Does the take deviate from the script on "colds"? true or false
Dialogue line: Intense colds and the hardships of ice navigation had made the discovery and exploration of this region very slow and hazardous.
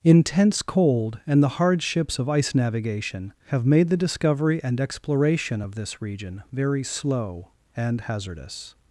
true